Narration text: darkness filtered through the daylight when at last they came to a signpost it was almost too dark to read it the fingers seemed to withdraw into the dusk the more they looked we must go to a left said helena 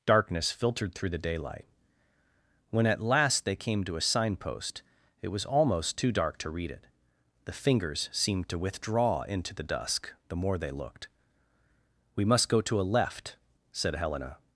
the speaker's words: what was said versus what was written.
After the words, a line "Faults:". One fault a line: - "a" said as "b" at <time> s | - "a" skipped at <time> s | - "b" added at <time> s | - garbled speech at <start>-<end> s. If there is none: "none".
darkness filtered through the daylight when at last they came to a signpost it was almost too dark to read it the fingers seemed to withdraw into the dusk the more they looked we must go to a left said helena
Faults:
none